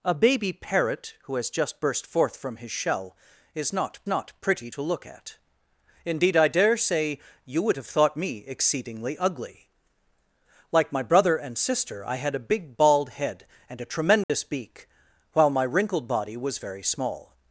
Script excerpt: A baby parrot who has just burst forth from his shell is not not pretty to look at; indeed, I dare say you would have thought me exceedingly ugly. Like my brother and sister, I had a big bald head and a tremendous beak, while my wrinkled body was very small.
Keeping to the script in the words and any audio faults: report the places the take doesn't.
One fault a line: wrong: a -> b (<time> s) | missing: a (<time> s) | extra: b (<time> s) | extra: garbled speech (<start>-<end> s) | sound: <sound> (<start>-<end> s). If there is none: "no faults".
sound: dropout (14.2-14.3 s)